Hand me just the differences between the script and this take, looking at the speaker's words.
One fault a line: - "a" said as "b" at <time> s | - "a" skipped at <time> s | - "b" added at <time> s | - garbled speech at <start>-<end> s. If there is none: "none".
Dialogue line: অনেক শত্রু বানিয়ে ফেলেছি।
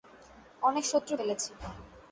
- "বানিয়ে" skipped at 1.1 s